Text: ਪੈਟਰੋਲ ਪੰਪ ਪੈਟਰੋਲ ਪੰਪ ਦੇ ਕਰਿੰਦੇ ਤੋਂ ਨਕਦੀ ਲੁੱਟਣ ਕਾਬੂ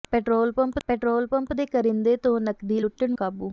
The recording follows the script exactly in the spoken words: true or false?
true